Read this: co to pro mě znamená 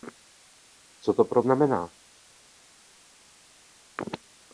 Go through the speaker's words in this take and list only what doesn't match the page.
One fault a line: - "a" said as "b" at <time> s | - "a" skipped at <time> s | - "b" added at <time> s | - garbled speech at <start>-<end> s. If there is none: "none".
- "mě" skipped at 1.4 s